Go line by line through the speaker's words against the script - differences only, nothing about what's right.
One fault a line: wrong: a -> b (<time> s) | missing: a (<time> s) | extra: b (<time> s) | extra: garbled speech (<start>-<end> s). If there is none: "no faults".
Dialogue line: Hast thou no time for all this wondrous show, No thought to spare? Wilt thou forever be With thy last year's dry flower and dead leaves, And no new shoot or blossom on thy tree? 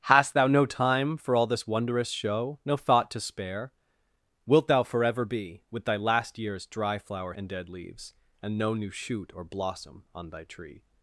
no faults